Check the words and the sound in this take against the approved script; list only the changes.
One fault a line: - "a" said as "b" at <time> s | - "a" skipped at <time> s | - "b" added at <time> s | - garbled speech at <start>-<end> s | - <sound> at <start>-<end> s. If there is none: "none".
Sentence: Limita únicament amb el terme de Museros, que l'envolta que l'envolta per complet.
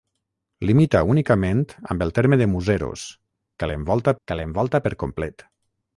none